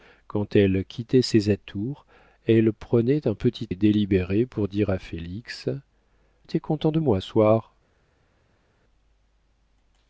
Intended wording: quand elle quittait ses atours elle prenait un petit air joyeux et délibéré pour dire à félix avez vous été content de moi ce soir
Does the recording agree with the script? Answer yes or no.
no